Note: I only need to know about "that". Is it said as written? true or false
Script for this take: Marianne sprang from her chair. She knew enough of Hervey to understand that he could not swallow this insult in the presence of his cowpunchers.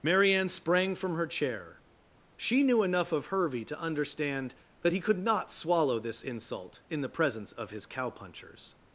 true